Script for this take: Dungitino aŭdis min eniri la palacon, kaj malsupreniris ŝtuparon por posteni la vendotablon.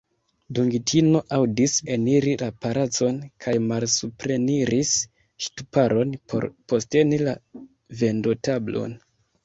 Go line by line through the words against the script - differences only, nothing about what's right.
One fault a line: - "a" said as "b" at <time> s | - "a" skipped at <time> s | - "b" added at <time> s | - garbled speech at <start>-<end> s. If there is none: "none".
- "min" skipped at 1.8 s